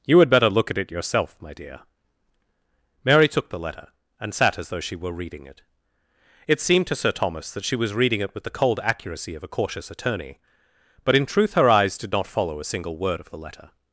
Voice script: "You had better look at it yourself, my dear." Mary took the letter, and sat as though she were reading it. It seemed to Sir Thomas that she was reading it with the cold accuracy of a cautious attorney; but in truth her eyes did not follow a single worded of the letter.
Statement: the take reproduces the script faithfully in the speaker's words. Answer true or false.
false